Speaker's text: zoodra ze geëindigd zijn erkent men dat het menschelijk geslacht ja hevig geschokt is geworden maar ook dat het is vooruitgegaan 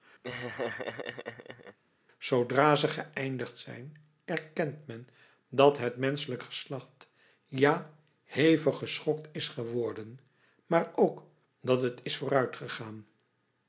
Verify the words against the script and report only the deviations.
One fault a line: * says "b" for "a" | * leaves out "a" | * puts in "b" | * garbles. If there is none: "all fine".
all fine